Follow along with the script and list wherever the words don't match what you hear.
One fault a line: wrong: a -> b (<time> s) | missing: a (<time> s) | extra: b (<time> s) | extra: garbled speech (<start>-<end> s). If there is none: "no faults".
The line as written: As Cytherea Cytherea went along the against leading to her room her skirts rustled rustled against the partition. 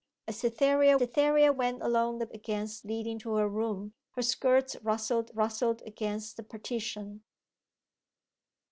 no faults